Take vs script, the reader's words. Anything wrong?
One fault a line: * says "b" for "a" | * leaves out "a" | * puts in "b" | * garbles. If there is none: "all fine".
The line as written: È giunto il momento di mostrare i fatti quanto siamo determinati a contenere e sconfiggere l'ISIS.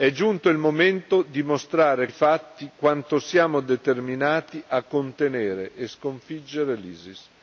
all fine